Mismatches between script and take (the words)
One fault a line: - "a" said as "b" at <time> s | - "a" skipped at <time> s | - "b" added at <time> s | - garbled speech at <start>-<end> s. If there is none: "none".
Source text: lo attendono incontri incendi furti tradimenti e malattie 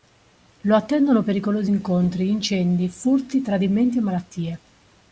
- "pericolosi" added at 1.2 s